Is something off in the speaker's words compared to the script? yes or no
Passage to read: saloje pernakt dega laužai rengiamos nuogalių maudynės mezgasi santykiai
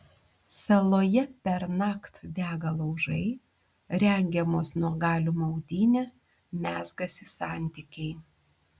no